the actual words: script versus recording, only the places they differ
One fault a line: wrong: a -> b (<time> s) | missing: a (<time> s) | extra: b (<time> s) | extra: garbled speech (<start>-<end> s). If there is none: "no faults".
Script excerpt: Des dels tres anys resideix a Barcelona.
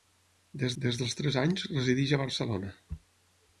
extra: des (0.8 s)